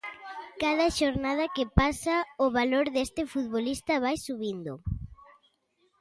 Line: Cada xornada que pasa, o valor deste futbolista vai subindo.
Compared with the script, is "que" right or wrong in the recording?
right